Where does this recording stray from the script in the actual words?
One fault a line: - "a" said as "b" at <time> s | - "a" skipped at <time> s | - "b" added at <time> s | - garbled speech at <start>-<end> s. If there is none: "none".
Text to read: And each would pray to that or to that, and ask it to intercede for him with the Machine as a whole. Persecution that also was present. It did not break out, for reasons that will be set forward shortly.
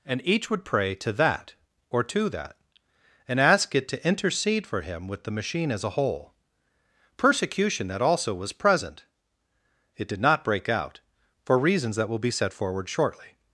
none